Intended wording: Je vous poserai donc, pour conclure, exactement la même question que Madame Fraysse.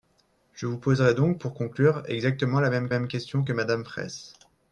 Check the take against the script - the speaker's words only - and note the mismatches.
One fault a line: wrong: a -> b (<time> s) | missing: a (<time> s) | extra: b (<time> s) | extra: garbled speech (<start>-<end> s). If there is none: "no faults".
extra: même (2.9 s)